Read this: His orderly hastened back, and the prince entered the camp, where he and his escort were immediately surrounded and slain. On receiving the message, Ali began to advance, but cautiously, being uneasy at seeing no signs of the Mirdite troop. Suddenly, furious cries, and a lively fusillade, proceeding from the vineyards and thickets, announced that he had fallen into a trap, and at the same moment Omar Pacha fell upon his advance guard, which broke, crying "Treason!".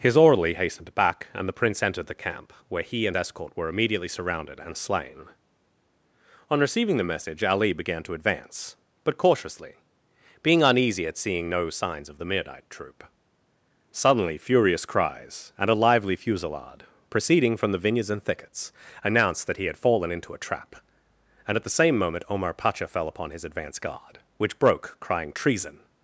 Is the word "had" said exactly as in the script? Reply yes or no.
yes